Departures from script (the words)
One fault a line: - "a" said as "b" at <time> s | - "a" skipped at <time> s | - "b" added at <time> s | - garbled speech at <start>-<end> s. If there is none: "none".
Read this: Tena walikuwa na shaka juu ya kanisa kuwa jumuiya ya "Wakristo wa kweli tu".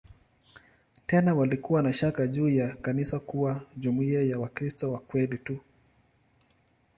none